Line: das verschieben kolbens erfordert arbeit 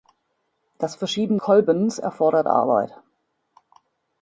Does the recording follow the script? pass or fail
pass